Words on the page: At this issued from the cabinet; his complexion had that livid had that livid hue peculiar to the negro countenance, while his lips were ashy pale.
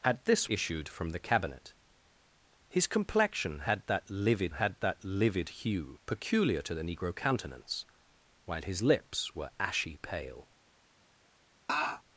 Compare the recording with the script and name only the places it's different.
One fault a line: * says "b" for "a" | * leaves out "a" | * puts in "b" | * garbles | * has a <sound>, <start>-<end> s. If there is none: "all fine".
* has a laugh, 11.7-12.0 s